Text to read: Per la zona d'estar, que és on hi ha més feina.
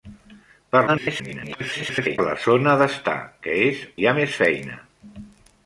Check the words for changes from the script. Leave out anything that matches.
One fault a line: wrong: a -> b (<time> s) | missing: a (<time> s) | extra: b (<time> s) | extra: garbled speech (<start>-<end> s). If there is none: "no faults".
extra: garbled speech (0.9-2.2 s)
missing: on (3.8 s)